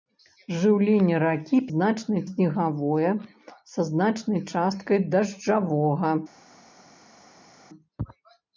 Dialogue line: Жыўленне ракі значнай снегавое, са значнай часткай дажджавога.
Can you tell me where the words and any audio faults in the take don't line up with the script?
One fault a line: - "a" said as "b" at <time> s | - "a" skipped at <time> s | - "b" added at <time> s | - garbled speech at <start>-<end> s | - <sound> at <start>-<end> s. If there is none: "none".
none